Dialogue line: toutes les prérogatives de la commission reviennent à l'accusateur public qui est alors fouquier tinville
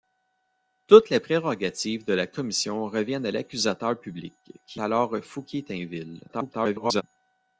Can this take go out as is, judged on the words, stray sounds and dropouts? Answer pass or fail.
fail